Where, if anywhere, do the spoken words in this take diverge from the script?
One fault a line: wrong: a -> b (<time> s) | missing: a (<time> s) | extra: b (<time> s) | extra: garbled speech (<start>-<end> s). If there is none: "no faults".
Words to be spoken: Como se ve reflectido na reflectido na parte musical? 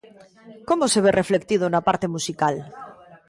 missing: reflectido na (1.8 s)